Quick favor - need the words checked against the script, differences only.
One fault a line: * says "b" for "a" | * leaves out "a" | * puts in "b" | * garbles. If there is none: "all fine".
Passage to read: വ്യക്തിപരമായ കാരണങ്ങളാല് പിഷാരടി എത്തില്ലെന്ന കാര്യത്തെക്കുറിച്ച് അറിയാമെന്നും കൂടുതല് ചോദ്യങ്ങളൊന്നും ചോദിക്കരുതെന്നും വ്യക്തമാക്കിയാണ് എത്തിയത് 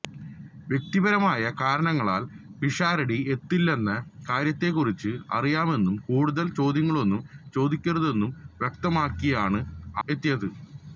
all fine